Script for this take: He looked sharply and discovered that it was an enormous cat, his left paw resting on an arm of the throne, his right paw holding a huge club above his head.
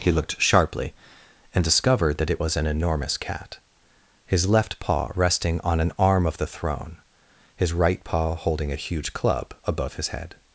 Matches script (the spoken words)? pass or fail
pass